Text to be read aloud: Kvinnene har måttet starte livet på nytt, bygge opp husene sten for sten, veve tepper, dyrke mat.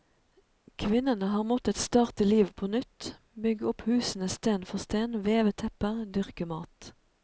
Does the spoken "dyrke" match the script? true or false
true